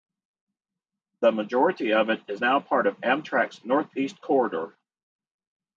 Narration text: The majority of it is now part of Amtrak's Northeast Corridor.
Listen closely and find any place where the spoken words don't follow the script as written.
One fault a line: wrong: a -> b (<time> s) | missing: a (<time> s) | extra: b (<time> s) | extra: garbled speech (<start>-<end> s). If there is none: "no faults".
no faults